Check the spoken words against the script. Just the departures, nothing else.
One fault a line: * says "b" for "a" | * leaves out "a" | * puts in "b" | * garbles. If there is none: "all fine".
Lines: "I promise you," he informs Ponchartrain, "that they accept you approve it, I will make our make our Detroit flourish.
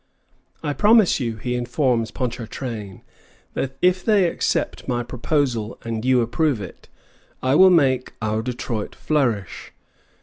* puts in "if"
* puts in "my proposal and"
* leaves out "make our"